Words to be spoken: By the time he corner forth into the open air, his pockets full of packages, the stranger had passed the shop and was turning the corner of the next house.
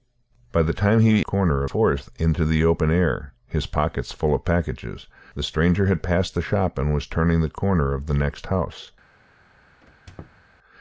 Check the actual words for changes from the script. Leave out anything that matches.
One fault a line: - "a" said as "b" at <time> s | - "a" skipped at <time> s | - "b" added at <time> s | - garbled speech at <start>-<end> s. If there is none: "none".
none